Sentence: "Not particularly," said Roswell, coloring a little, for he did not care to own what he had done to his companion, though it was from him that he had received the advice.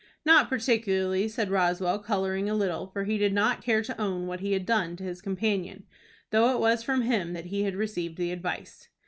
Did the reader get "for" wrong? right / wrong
right